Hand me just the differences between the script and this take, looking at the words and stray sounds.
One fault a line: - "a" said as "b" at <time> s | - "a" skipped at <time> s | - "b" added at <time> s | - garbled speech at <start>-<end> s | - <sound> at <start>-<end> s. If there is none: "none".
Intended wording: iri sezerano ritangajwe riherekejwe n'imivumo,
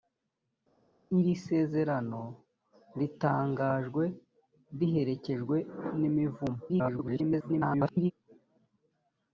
- garbled speech at 6.7-8.1 s